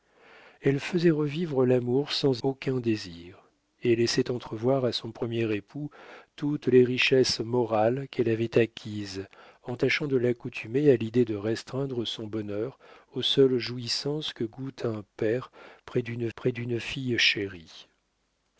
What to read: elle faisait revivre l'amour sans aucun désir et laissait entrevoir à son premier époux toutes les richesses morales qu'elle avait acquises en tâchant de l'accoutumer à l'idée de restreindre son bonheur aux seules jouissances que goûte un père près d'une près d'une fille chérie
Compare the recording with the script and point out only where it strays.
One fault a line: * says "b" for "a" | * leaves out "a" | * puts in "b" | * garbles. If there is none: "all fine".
all fine